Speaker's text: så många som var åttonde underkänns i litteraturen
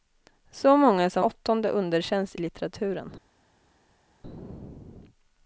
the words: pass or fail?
fail